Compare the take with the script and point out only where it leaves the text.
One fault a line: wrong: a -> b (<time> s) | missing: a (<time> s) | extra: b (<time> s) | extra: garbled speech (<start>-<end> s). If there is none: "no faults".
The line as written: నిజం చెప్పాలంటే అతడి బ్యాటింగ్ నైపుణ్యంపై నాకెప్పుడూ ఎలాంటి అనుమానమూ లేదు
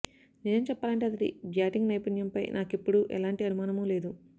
no faults